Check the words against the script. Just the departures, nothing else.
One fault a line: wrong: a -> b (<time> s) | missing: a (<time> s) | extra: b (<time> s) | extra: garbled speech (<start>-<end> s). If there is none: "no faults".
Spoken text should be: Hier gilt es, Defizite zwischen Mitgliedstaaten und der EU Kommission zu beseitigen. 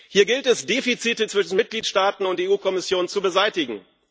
no faults